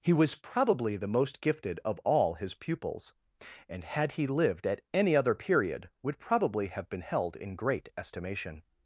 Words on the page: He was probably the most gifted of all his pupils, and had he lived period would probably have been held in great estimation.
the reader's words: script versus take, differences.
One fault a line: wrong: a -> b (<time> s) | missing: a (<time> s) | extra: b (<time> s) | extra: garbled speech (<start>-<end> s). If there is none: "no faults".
extra: at any other (4.7 s)